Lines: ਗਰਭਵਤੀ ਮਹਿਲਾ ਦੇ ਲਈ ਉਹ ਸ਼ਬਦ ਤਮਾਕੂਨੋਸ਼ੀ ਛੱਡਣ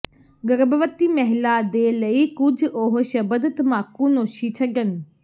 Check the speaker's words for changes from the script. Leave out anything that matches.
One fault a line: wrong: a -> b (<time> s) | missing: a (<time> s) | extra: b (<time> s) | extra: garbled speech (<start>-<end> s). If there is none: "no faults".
extra: ਕੁਝ (2.4 s)